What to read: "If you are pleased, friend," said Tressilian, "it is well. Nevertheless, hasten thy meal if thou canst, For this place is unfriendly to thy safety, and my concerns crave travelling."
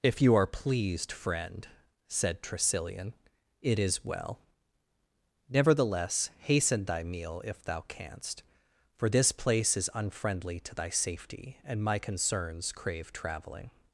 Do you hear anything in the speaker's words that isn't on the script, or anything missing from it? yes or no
no